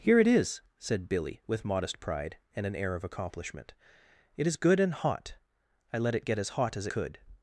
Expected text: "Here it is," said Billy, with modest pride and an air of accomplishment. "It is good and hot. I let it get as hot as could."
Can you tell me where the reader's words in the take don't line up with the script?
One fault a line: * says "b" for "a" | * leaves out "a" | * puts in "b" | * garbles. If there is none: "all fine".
all fine